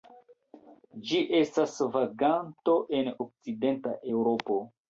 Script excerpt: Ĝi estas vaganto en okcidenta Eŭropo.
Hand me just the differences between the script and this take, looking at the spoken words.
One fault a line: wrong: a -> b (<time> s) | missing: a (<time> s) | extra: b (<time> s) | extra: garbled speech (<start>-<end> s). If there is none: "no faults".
no faults